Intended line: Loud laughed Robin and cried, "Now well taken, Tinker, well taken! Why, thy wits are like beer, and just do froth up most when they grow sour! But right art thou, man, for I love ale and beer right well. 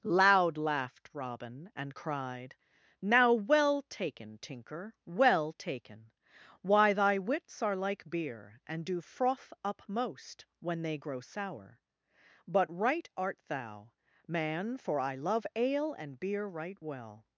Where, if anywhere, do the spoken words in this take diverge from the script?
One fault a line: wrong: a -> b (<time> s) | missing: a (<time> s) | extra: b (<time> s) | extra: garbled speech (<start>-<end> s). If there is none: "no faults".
missing: just (8.8 s)